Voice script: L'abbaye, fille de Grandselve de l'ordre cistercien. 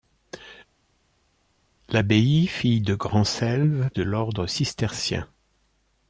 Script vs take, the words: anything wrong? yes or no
no